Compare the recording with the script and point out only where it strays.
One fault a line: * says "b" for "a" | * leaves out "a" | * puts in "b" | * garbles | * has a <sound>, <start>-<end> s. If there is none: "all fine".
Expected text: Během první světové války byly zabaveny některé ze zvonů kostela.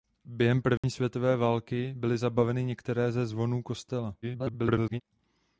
* has a dropout, 0.8-0.8 s
* garbles